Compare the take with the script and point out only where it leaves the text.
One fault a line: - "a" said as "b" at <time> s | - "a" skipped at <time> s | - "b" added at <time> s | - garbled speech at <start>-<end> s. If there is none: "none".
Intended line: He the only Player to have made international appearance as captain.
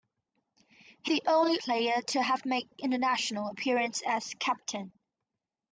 none